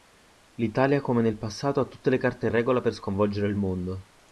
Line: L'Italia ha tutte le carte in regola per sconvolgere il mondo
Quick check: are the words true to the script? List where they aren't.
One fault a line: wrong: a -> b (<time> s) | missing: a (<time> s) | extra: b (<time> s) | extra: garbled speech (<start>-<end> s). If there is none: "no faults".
extra: come nel passato (1.0 s)